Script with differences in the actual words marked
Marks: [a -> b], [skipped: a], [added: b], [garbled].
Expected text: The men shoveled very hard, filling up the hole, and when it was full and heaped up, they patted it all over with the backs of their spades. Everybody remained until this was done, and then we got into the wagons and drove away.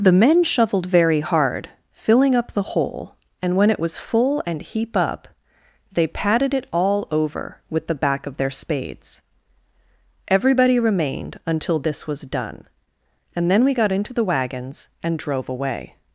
The men shoveled very hard, filling up the hole, and when it was full and [heaped -> heap] up, they patted it all over with the [backs -> back] of their spades. Everybody remained until this was done, and then we got into the wagons and drove away.